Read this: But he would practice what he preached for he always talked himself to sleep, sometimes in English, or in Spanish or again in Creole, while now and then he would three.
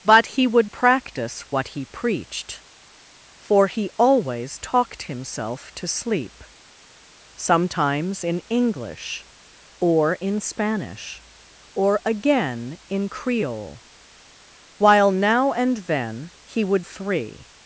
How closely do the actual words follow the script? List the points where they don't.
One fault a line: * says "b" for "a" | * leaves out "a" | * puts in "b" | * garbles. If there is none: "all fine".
all fine